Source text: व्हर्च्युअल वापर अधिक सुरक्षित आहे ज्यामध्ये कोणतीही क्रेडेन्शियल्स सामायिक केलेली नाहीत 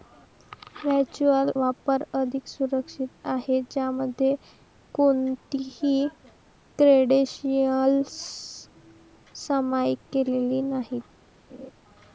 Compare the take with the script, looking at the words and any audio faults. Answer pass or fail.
fail